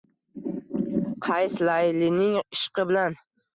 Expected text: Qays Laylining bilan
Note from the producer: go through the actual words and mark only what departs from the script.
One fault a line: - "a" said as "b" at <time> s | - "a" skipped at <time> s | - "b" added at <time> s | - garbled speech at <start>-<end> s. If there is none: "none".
- "ishqi" added at 2.4 s